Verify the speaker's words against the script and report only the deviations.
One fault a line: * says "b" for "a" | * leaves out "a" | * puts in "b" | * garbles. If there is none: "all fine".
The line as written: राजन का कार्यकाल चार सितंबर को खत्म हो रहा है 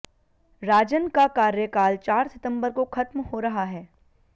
all fine